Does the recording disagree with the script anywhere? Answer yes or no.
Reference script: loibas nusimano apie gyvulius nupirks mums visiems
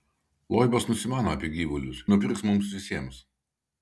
no